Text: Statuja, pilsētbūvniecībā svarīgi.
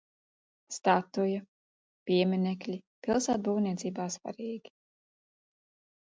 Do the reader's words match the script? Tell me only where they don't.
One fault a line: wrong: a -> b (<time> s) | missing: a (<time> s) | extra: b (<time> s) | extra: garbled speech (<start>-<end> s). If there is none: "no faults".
extra: pieminekļi (2.1 s)